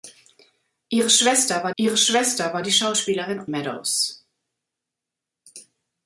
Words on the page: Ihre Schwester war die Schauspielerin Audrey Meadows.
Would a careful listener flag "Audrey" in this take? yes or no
yes